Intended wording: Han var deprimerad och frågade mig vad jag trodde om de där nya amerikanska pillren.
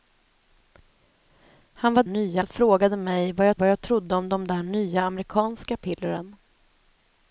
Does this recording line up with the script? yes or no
no